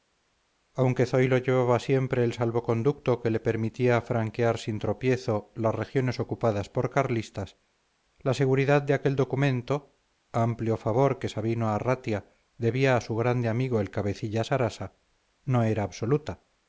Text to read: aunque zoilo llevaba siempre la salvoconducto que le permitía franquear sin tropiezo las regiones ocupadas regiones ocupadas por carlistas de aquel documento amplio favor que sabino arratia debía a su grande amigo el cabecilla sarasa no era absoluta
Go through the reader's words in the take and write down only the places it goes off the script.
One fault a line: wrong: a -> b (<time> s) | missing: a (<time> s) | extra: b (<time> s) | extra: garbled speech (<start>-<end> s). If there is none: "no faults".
wrong: la -> el (2.2 s)
wrong: regiones ocupadas por carlistas -> por carlistas la seguridad (6.7 s)